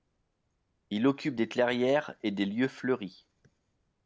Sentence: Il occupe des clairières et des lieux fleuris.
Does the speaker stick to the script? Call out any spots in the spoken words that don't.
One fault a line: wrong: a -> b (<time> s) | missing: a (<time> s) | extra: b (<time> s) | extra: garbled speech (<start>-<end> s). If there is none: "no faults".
no faults